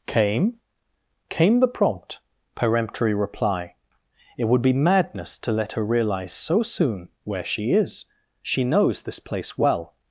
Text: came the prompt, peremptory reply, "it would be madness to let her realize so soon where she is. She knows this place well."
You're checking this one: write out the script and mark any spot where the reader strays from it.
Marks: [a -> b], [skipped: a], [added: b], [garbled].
came [added: came] the prompt, peremptory reply, "it would be madness to let her realize so soon where she is. She knows this place well."